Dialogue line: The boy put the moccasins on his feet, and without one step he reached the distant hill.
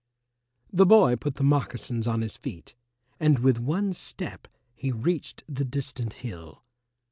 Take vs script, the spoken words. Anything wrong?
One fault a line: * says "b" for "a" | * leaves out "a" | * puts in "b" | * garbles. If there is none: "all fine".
* says "with" for "without"